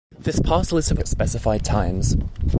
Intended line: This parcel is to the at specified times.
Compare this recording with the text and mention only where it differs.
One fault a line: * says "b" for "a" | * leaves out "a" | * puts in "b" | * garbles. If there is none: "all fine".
all fine